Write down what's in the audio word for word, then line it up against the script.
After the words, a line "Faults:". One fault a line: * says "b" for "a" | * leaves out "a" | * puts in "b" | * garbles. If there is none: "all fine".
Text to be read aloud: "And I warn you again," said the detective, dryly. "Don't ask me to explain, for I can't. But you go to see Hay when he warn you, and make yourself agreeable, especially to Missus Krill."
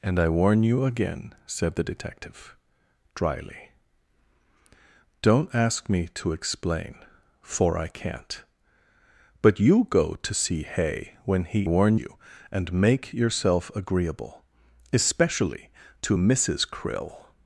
"And I warn you again," said the detective, dryly. "Don't ask me to explain, for I can't. But you go to see Hay when he warn you, and make yourself agreeable, especially to Missus Krill."
Faults:
all fine